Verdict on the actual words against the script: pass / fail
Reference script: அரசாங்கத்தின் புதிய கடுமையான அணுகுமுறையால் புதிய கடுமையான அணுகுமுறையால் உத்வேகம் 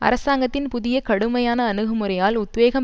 fail